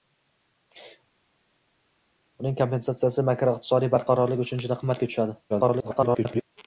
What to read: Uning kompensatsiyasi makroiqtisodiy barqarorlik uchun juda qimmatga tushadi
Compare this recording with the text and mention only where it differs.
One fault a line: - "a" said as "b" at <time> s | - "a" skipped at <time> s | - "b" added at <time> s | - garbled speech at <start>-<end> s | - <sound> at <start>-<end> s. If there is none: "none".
- garbled speech at 5.5-6.4 s